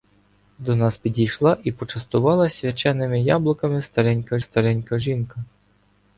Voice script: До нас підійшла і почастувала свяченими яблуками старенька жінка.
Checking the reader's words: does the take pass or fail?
fail